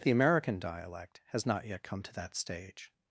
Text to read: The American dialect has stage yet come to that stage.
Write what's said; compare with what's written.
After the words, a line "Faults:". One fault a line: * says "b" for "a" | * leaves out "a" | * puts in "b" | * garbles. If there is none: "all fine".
The American dialect has not yet come to that stage.
Faults:
* says "not" for "stage"